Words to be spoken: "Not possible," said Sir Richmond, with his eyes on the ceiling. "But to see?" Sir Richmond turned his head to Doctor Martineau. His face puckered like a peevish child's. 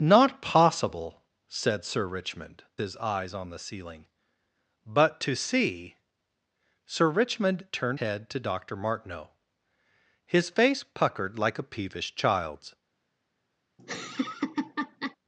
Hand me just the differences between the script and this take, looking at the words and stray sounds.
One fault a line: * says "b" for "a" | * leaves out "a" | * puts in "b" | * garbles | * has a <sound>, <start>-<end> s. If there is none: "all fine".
* leaves out "with"
* leaves out "his"
* has a laugh, 13.8-15.2 s